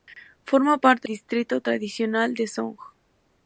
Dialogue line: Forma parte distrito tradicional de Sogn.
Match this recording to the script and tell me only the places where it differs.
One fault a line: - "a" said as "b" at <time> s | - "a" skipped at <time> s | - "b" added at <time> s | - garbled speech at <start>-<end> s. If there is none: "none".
none